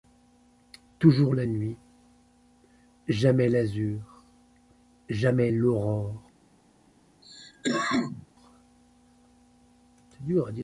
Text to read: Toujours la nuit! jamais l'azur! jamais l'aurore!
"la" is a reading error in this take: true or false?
false